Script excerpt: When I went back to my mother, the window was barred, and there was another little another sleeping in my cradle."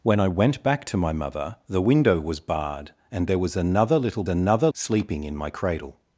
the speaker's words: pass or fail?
pass